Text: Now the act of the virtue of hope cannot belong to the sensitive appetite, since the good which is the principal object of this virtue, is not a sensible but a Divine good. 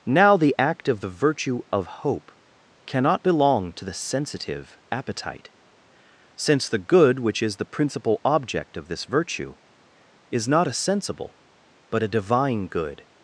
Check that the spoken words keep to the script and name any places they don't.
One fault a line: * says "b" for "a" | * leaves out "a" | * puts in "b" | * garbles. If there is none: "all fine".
all fine